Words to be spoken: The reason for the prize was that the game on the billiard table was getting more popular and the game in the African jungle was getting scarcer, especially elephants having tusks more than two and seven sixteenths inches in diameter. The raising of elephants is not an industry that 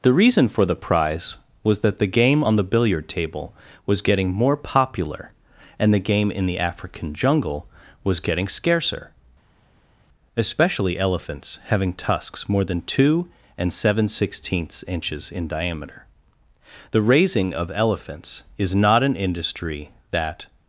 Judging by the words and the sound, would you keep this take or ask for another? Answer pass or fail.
pass